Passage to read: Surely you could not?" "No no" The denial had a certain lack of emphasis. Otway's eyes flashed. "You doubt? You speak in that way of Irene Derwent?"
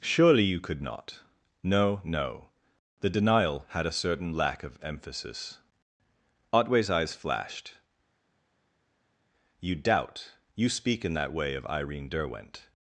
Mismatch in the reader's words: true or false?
false